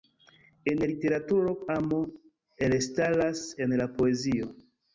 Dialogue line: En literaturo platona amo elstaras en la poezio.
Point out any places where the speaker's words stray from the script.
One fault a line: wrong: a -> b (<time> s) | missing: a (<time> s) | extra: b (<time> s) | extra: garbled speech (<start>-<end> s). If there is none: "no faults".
missing: platona (1.5 s)